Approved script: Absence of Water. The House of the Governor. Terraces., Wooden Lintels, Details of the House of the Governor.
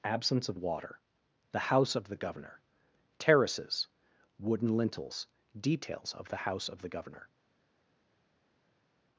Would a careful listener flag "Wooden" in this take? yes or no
no